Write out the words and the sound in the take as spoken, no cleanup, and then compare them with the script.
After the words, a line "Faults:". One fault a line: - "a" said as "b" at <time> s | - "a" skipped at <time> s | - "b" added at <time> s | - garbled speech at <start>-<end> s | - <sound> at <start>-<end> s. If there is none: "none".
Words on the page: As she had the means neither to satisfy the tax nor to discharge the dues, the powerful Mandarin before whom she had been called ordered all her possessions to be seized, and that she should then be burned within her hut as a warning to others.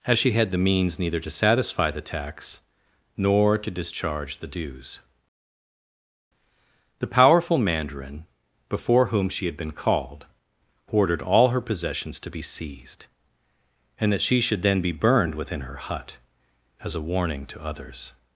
As she had the means neither to satisfy the tax nor to discharge the dues, the powerful Mandarin before whom she had been called ordered all her possessions to be seized, and that she should then be burned within her hut as a warning to others.
Faults:
none